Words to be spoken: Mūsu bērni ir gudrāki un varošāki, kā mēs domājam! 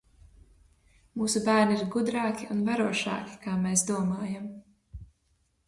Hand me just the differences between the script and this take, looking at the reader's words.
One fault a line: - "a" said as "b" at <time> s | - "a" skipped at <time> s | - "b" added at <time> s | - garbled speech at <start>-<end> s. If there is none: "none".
none